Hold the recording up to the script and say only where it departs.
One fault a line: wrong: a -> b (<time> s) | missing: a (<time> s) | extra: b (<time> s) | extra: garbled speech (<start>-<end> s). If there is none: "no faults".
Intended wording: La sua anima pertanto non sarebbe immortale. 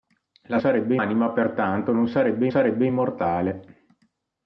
wrong: sua -> sarebbe (0.6 s)
extra: sarebbe (2.5 s)